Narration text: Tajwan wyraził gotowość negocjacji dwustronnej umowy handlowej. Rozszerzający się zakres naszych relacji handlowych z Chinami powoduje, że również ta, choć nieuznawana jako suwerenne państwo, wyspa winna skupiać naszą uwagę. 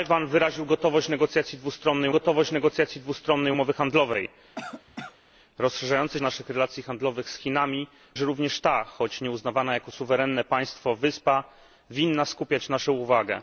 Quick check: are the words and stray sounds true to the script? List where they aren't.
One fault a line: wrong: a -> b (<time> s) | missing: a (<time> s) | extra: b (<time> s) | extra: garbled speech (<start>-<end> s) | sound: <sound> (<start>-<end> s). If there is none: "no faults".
extra: gotowość negocjacji dwustronnej (2.1 s)
sound: cough (4.6-5.2 s)
missing: się zakres (6.2 s)
missing: powoduje (7.9 s)